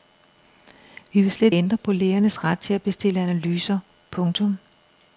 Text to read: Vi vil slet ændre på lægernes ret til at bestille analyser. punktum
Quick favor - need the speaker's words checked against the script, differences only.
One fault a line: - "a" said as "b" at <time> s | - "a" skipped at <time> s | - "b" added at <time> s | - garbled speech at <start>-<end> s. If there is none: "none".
none